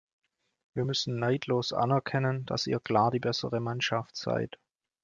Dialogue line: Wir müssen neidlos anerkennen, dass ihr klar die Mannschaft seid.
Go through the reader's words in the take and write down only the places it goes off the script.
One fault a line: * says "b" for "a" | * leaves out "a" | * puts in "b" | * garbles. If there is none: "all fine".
* puts in "bessere"